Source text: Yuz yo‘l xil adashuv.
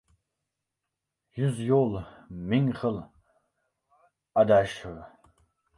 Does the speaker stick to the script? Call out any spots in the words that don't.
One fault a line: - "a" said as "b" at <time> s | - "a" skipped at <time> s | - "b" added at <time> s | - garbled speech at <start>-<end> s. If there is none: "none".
- "ming" added at 2.5 s